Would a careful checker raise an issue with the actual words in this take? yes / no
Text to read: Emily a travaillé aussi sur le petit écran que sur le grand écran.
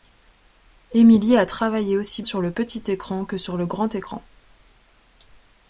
no